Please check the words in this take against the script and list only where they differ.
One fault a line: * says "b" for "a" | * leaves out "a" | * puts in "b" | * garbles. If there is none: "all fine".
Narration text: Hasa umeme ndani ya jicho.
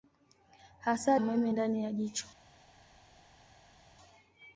all fine